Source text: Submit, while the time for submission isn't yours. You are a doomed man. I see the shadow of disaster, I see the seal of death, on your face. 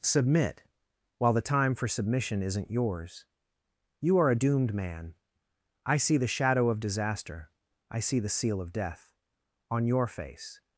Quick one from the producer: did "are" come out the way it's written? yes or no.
yes